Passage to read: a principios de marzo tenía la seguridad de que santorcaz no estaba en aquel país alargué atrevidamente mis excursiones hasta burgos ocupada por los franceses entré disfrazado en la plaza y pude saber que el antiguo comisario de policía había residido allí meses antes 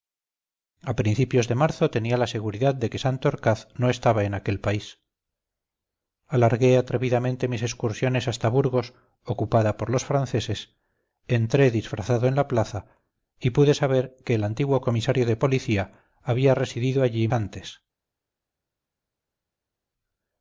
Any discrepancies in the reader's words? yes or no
yes